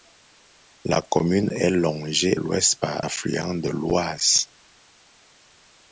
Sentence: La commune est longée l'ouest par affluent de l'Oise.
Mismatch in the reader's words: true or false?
false